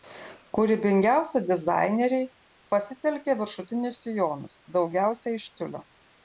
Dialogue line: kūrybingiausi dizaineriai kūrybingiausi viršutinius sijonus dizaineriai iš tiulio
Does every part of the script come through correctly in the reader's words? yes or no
no